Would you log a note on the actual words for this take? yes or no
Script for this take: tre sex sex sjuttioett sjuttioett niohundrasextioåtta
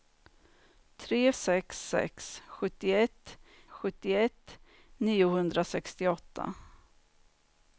no